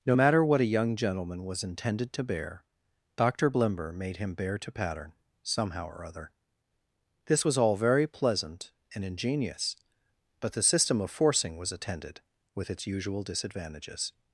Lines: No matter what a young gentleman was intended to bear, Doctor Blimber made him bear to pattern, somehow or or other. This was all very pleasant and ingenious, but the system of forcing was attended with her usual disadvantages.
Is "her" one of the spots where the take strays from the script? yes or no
yes